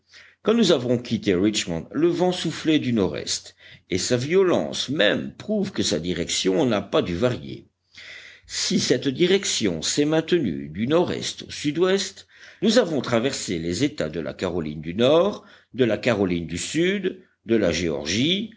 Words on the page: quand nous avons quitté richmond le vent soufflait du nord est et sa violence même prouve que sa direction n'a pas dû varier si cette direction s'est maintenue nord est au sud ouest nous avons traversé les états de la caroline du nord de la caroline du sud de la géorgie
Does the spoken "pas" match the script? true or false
true